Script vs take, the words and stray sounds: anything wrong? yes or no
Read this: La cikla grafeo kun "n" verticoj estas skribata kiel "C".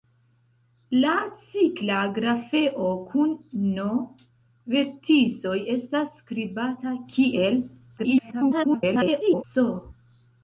yes